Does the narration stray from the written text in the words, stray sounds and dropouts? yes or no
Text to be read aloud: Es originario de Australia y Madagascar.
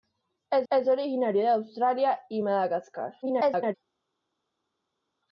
yes